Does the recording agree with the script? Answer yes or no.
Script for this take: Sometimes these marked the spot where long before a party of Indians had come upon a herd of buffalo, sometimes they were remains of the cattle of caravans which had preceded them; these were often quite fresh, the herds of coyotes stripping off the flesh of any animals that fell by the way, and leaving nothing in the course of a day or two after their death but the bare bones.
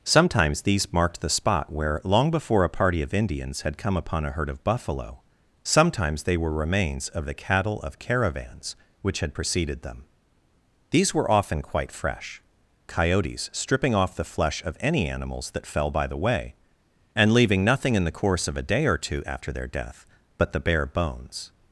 no